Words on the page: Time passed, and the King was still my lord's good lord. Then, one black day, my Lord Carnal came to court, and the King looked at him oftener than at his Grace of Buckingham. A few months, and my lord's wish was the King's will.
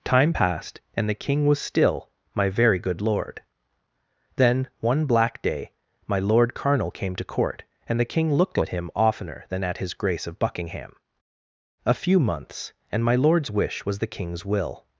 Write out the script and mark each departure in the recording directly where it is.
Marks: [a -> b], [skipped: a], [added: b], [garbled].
Time passed, and the King was still my [lord's -> very] good lord. Then, one black day, my Lord Carnal came to court, and the King looked at him oftener than at his Grace of Buckingham. A few months, and my lord's wish was the King's will.